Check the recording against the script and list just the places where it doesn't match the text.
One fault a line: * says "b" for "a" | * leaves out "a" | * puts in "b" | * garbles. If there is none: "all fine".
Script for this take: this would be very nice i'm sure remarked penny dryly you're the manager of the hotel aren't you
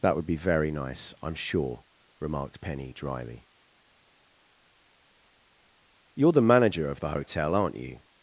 * says "that" for "this"